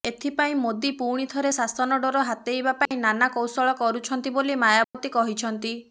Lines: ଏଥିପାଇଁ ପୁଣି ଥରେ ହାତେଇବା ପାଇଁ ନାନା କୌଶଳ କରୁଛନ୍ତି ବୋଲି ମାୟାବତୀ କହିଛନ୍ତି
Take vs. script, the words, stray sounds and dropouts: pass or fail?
fail